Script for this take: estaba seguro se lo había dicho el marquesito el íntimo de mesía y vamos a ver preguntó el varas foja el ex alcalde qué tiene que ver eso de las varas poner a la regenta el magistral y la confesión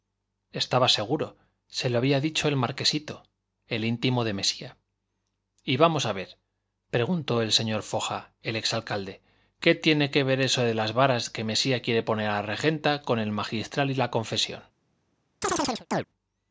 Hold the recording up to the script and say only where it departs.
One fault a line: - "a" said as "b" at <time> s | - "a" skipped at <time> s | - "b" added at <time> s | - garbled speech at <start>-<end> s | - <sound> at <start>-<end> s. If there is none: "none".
- "varas" said as "señor" at 7.5 s
- "que mesía quiere" added at 11.3 s
- "con" added at 13.0 s
- chirp at 15.4-16.1 s